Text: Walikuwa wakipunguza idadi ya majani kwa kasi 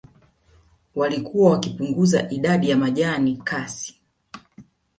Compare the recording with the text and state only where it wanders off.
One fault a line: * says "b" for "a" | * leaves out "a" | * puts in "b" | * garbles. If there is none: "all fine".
* leaves out "kwa"